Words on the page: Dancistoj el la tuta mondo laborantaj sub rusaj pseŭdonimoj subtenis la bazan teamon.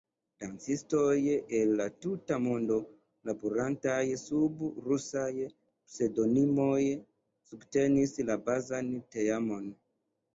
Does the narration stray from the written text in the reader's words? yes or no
no